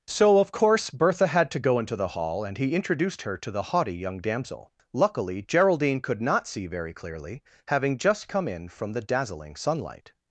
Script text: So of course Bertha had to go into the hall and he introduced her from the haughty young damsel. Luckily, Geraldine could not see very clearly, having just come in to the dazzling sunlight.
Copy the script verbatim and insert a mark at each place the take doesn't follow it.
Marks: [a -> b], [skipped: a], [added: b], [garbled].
So of course Bertha had to go into the hall and he introduced her [from -> to] the haughty young damsel. Luckily, Geraldine could not see very clearly, having just come in [to -> from] the dazzling sunlight.